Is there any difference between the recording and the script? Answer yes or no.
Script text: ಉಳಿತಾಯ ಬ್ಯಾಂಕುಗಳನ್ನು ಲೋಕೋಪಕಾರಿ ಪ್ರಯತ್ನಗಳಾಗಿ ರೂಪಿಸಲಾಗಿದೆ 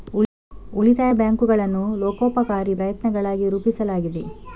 no